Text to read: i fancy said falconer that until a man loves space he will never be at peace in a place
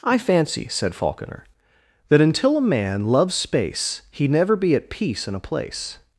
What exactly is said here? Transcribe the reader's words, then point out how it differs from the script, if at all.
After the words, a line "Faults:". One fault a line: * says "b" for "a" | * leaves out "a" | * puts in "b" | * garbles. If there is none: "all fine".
i fancy said falconer that until a man loves space he never be at peace in a place
Faults:
* leaves out "will"